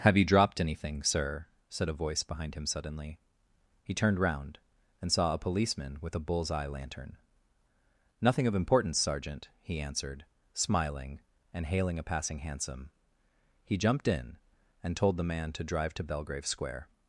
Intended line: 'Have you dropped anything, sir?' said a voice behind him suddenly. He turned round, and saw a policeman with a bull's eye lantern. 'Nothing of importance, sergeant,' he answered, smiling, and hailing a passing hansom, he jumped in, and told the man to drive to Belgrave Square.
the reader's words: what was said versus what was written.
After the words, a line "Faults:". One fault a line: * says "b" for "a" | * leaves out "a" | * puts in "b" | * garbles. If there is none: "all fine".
'Have you dropped anything, sir?' said a voice behind him suddenly. He turned round, and saw a policeman with a bull's eye lantern. 'Nothing of importance, sergeant,' he answered, smiling, and hailing a passing hansom, he jumped in, and told the man to drive to Belgrave Square.
Faults:
all fine